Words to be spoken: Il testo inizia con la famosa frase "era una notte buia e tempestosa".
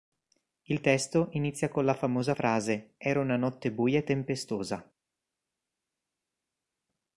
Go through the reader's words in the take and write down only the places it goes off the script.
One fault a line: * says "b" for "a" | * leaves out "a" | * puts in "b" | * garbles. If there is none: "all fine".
all fine